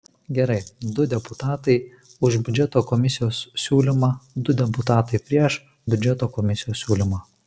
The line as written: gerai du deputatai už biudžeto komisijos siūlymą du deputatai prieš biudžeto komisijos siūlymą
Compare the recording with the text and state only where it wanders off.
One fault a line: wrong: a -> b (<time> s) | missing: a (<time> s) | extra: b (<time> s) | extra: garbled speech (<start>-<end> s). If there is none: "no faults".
no faults